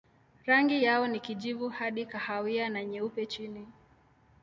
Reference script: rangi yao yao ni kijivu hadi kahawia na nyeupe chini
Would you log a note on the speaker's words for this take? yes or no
yes